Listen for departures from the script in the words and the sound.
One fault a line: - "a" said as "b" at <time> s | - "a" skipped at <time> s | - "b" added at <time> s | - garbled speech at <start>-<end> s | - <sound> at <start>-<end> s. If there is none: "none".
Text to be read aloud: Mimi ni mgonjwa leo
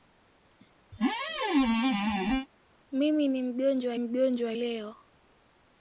- squeak at 0.9-2.5 s
- "mgonjwa" added at 4.0 s